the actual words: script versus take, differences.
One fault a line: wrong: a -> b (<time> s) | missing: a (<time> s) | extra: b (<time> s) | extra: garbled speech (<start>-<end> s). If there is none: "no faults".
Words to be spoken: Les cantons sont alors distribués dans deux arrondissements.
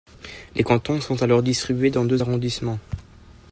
no faults